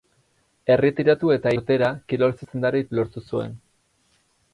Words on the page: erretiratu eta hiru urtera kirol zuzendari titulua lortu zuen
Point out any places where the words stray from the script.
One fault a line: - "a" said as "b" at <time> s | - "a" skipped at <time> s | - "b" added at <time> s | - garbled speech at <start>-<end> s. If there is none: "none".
- "hiru" skipped at 1.5 s
- "titulua" skipped at 2.8 s